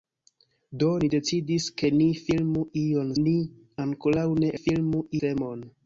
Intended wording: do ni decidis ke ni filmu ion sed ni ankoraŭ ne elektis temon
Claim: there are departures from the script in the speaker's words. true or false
true